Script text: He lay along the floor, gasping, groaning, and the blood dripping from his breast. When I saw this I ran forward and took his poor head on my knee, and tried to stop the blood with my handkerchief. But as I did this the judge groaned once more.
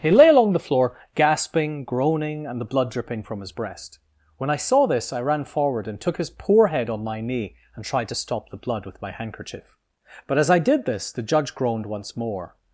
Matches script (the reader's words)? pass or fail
pass